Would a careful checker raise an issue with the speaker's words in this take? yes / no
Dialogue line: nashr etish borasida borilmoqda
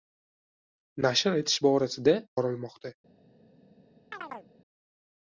no